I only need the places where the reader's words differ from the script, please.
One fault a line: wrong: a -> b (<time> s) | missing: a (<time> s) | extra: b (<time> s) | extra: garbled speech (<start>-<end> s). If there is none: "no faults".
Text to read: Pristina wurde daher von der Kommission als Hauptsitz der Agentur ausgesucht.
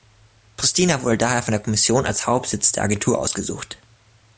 no faults